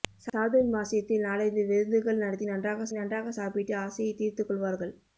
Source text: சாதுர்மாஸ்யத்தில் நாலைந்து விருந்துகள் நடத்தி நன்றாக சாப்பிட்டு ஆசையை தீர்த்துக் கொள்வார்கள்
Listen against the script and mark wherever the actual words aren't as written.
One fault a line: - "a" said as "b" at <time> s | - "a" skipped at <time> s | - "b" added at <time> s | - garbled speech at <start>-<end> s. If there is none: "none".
- "நன்றாக" added at 2.9 s